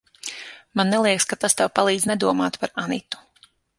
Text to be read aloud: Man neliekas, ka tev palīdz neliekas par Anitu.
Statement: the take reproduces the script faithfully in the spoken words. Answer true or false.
false